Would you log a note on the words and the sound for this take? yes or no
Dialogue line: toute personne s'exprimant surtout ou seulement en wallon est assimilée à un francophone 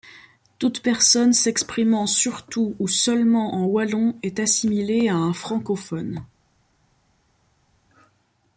no